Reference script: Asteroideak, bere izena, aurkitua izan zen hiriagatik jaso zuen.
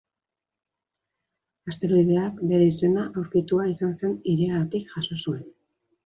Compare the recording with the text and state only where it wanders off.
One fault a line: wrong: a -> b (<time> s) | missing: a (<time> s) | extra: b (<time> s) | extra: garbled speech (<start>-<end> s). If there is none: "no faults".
no faults